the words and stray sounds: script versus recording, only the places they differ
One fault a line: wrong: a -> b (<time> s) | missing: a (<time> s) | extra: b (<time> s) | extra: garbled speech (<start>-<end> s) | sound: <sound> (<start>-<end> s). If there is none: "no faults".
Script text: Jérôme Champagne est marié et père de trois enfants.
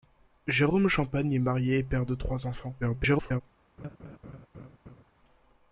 extra: garbled speech (2.8-3.4 s)
sound: laugh (3.8-5.0 s)